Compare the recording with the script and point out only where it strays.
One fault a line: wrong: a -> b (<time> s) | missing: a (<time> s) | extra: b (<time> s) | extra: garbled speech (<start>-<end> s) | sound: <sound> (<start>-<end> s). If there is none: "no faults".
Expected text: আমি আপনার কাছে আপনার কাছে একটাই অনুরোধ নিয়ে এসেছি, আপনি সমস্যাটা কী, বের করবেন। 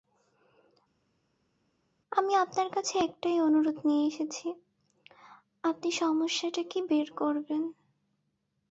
missing: আপনার কাছে (2.9 s)